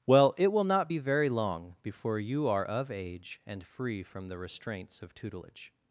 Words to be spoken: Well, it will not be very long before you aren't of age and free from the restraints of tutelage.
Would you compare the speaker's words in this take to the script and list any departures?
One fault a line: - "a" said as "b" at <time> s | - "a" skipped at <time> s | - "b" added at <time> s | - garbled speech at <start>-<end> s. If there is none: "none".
- "aren't" said as "are" at 2.5 s